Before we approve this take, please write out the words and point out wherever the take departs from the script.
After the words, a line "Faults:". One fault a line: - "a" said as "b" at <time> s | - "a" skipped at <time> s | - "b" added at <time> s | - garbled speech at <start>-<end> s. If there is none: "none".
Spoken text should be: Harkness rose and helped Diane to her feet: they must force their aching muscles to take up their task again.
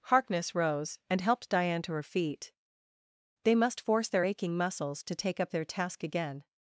Harkness rose and helped Diane to her feet: they must force their aching muscles to take up their task again.
Faults:
none